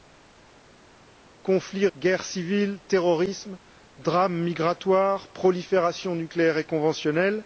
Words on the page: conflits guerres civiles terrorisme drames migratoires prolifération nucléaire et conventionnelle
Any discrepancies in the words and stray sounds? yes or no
no